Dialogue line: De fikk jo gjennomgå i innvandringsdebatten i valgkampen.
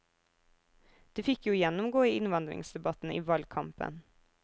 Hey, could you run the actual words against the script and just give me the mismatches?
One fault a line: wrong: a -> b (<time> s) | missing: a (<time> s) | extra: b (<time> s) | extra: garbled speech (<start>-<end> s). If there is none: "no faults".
no faults